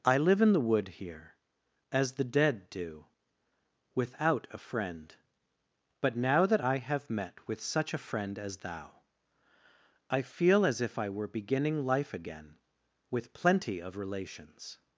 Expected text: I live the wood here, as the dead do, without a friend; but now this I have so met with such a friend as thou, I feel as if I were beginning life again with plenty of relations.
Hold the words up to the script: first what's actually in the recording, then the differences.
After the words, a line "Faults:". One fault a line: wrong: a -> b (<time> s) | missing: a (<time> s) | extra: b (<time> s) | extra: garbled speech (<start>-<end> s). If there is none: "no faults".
I live in the wood here, as the dead do, without a friend; but now that I have met with such a friend as thou, I feel as if I were beginning life again with plenty of relations.
Faults:
extra: in (0.4 s)
wrong: this -> that (6.5 s)
missing: so (7.1 s)